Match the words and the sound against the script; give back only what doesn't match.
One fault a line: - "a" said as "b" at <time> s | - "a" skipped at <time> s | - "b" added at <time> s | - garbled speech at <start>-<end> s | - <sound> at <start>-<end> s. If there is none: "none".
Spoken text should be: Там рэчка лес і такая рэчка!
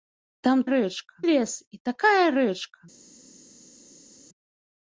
none